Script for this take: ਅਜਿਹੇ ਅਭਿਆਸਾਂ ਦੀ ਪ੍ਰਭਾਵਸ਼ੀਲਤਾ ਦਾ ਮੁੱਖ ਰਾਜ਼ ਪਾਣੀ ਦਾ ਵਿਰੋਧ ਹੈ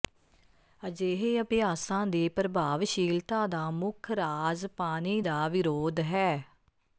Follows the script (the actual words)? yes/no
yes